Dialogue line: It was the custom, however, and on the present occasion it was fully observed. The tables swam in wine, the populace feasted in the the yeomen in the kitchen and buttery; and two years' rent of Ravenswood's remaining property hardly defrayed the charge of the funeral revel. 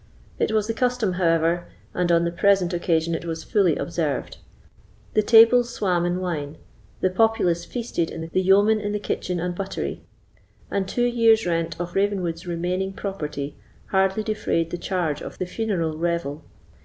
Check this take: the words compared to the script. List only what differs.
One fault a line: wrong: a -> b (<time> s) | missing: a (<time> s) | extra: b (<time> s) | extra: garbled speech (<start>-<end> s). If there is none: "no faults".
no faults